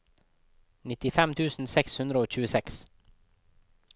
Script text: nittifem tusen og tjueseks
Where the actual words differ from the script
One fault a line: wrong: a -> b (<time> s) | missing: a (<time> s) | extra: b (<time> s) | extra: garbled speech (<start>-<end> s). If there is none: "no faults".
extra: seks hundre (1.7 s)